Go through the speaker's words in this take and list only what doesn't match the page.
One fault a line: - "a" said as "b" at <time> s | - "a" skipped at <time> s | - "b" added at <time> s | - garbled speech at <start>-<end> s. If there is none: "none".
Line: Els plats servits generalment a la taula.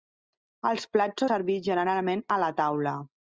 none